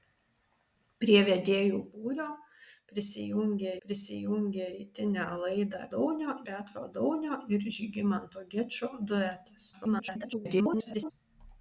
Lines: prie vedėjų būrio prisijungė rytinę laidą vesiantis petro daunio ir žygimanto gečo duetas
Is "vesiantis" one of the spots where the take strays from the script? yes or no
yes